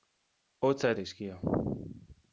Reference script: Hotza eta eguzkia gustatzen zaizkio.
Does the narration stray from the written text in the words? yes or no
yes